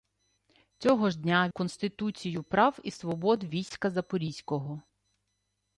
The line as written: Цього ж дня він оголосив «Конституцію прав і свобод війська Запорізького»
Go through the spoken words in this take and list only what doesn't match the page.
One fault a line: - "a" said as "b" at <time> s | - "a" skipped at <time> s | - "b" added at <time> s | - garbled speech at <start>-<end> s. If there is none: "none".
- "він оголосив" skipped at 1.5 s